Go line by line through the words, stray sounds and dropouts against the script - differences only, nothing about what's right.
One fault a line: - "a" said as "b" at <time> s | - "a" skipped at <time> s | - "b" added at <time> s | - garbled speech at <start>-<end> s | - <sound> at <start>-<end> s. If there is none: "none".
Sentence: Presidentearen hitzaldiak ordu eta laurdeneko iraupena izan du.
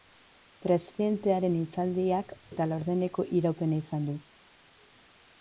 - "ordu" skipped at 2.3 s